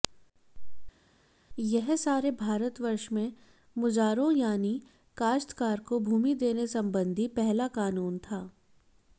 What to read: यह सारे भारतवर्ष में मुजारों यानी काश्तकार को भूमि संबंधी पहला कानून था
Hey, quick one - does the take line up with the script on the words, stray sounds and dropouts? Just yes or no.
no